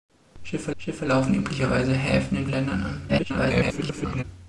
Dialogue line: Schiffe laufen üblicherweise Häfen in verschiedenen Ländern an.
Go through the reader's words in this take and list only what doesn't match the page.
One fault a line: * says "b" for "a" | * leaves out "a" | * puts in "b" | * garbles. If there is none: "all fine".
* puts in "schiffe"
* leaves out "verschiedenen"
* garbles